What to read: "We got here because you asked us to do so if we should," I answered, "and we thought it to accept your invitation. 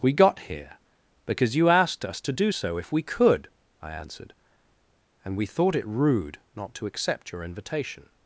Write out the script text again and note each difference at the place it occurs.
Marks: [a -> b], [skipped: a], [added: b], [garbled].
"We got here because you asked us to do so if we [should," -> could] I answered, "and we thought it [added: rude not] to accept your invitation.